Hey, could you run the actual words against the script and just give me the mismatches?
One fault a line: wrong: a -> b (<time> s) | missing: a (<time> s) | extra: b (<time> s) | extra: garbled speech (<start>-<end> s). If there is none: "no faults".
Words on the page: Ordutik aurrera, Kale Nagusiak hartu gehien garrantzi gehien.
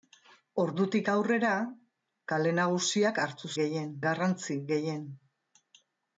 no faults